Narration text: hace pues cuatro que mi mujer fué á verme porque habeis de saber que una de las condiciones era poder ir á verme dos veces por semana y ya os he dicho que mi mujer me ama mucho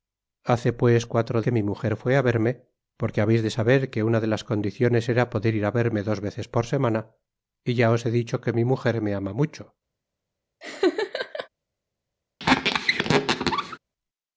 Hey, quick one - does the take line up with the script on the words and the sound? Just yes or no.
no